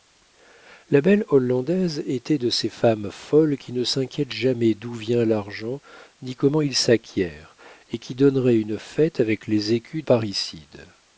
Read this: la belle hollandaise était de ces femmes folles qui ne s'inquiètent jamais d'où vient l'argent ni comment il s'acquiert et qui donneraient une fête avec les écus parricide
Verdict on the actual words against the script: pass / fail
pass